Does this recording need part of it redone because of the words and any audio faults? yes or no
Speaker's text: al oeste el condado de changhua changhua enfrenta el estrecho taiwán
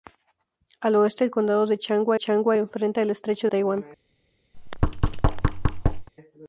yes